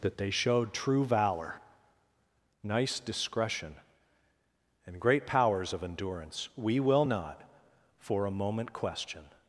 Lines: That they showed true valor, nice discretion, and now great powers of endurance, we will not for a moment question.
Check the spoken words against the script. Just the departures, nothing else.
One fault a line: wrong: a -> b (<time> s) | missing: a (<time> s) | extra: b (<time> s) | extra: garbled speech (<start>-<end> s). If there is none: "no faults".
missing: now (5.0 s)